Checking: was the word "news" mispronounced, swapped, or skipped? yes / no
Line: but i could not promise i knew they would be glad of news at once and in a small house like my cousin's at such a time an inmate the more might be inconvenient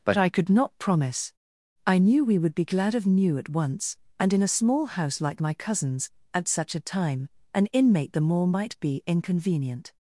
yes